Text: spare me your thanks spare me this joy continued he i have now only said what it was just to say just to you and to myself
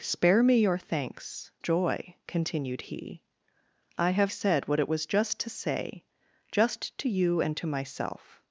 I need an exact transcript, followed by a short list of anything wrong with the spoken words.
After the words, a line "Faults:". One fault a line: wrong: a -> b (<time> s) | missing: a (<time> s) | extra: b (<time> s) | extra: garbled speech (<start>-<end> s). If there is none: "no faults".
spare me your thanks joy continued he i have said what it was just to say just to you and to myself
Faults:
missing: spare me this (1.5 s)
missing: now only (4.3 s)